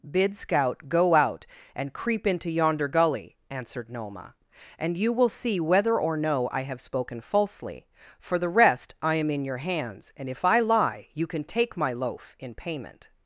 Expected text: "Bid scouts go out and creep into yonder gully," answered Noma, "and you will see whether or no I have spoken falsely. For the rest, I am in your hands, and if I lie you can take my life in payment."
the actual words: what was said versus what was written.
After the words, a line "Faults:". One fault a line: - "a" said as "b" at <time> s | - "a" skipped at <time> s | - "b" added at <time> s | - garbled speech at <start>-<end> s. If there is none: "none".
"Bid scout go out and creep into yonder gully," answered Noma, "and you will see whether or no I have spoken falsely. For the rest, I am in your hands, and if I lie you can take my loaf in payment."
Faults:
- "scouts" said as "scout" at 0.3 s
- "life" said as "loaf" at 11.9 s